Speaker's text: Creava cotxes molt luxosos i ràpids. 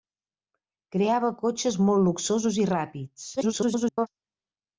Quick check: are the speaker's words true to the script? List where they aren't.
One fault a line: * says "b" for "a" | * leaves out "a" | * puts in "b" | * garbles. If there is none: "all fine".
* garbles